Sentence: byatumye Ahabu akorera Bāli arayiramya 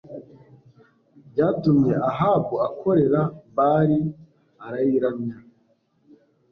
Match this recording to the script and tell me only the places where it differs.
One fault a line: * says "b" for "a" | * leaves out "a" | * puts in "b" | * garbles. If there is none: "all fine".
all fine